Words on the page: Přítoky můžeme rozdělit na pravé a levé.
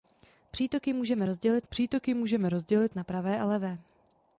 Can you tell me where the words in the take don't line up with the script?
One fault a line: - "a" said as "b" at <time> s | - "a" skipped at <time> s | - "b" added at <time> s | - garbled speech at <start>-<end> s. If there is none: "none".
- "přítoky můžeme rozdělit" added at 1.7 s